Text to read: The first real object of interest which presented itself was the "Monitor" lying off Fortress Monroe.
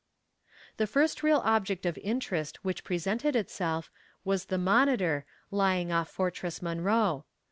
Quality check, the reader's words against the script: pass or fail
pass